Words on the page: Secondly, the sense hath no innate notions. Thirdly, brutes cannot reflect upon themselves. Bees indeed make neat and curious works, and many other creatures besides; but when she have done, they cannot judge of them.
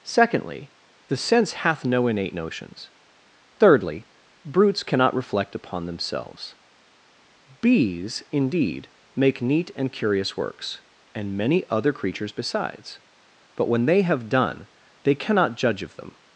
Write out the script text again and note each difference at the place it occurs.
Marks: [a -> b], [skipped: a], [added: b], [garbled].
Secondly, the sense hath no innate notions. Thirdly, brutes cannot reflect upon themselves. Bees indeed make neat and curious works, and many other creatures besides; but when [she -> they] have done, they cannot judge of them.